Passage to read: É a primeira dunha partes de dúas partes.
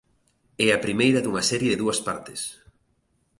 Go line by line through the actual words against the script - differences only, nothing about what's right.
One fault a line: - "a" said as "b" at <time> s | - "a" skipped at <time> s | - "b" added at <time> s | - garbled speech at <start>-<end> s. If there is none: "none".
- "partes" said as "serie" at 1.5 s